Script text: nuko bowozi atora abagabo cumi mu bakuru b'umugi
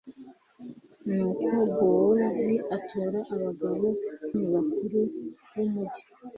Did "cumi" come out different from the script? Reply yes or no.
yes